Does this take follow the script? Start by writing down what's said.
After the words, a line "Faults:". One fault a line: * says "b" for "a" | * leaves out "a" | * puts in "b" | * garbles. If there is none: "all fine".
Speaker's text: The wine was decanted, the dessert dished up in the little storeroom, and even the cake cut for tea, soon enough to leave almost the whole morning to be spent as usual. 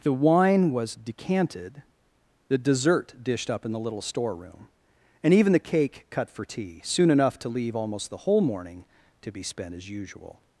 The wine was decanted, the dessert dished up in the little storeroom, and even the cake cut for tea, soon enough to leave almost the whole morning to be spent as usual.
Faults:
all fine